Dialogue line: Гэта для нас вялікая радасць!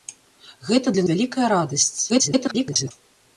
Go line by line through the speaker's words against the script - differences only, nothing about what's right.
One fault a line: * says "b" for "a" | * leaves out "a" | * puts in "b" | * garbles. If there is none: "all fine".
* leaves out "нас"
* garbles